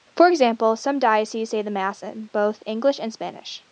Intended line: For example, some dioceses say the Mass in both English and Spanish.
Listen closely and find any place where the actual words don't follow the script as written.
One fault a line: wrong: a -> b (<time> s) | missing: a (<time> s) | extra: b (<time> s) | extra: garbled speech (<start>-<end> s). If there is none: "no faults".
no faults